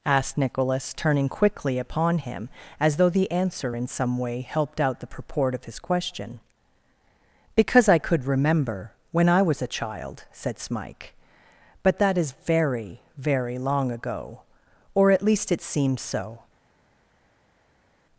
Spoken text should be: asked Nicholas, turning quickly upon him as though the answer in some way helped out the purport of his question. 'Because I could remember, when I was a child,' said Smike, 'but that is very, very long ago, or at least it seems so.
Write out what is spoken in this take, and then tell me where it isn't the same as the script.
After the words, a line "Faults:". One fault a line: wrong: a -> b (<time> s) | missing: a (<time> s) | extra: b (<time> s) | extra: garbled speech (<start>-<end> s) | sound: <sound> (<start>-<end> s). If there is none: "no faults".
asked Nicholas, turning quickly upon him as though the answer in some way helped out the purport of his question. 'Because I could remember, when I was a child,' said Smike, 'but that is very, very long ago, or at least it seems so.
Faults:
no faults